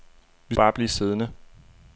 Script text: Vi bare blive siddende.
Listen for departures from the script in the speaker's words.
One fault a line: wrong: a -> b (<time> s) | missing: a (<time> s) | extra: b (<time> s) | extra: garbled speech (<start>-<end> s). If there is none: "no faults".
no faults